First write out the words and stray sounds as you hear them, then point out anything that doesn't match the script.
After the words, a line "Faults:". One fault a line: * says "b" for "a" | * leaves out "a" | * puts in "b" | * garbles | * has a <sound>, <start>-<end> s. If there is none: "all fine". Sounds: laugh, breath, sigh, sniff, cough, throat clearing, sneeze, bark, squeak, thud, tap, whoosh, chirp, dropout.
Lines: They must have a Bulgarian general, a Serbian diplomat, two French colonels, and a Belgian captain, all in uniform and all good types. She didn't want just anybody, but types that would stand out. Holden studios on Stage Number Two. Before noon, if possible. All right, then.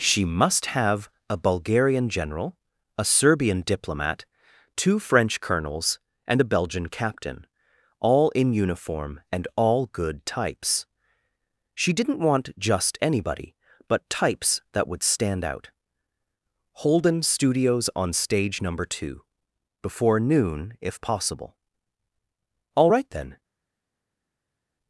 She must have a Bulgarian general, a Serbian diplomat, two French colonels, and a Belgian captain, all in uniform and all good types. She didn't want just anybody, but types that would stand out. Holden studios on Stage Number Two. Before noon, if possible. All right, then.
Faults:
* says "She" for "They"